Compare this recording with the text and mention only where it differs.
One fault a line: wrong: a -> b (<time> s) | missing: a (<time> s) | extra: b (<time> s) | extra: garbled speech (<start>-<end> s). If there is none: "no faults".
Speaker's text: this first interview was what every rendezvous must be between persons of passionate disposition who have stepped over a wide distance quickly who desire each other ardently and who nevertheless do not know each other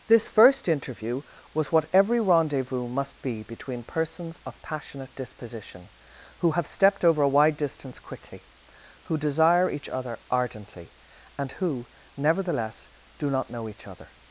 no faults